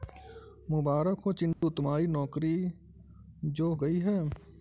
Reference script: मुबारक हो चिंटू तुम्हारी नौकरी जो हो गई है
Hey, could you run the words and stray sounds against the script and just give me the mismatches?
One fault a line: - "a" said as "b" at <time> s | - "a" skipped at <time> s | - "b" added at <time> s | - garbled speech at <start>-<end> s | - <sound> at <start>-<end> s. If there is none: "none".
- dropout at 1.5-1.6 s
- "हो" skipped at 3.7 s